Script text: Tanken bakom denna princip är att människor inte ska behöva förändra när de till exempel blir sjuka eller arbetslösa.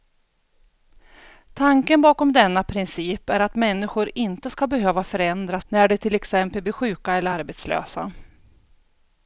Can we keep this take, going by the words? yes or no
yes